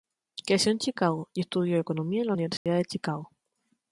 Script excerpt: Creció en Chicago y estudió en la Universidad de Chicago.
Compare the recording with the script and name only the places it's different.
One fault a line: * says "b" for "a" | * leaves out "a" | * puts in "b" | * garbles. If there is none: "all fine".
* puts in "economía"